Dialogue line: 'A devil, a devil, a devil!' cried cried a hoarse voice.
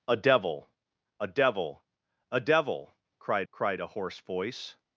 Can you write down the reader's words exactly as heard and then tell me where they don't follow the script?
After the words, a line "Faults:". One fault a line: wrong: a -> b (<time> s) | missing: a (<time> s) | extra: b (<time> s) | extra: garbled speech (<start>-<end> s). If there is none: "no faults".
'A devil, a devil, a devil!' cried cried a hoarse voice.
Faults:
no faults